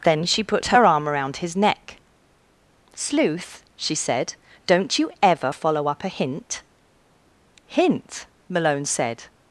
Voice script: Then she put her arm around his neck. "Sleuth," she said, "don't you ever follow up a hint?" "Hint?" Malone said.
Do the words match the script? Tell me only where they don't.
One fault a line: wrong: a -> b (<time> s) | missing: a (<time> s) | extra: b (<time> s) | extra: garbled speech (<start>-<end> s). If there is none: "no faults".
no faults